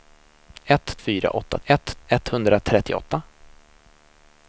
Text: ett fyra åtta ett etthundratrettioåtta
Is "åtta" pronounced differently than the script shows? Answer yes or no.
no